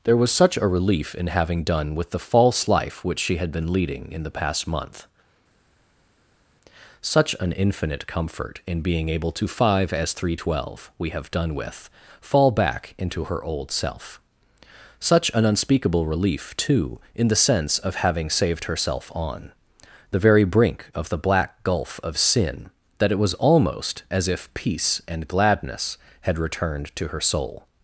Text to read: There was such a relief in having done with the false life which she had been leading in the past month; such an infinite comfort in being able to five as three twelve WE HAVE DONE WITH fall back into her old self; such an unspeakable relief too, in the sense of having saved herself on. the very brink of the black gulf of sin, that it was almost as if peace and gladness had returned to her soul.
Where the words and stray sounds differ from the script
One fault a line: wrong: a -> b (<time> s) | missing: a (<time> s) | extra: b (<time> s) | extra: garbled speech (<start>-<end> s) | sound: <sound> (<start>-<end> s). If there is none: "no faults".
no faults